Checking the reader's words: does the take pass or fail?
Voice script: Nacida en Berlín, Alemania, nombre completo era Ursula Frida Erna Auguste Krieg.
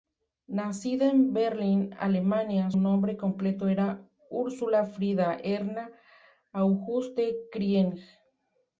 pass